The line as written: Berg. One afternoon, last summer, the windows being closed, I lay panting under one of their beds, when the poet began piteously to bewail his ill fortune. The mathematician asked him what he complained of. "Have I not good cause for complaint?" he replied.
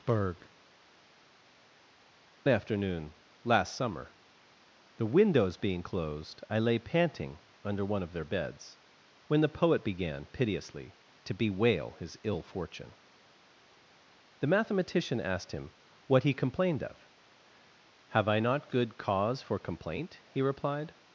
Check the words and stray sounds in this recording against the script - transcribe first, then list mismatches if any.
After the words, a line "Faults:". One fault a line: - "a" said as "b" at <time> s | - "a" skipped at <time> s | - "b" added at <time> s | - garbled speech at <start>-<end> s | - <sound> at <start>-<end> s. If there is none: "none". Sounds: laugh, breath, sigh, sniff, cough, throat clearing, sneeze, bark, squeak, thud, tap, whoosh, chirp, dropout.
Berg. Afternoon, last summer, the windows being closed, I lay panting under one of their beds, when the poet began piteously to bewail his ill fortune. The mathematician asked him what he complained of. "Have I not good cause for complaint?" he replied.
Faults:
- "One" skipped at 0.5 s